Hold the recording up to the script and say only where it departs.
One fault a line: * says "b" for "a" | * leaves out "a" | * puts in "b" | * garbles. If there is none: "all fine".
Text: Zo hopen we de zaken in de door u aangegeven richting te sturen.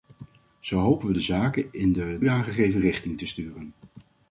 * leaves out "door"